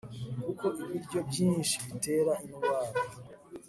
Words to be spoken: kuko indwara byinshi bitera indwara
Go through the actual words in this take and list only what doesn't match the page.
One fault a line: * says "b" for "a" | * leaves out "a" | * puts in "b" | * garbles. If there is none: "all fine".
* says "ibiryo" for "indwara"